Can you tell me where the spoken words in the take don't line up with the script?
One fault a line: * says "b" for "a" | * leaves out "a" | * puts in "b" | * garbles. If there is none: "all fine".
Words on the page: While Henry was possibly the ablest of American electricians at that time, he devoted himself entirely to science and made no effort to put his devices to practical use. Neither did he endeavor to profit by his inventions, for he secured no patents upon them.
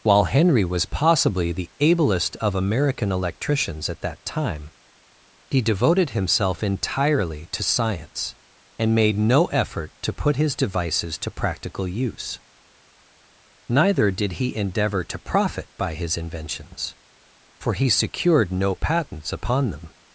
all fine